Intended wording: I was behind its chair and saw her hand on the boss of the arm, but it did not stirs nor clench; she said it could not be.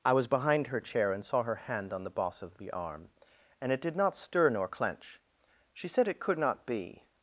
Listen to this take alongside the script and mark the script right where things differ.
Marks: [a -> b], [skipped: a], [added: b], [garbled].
I was behind [its -> her] chair and saw her hand on the boss of the arm, [but -> and] it did not [stirs -> stir] nor clench; she said it could not be.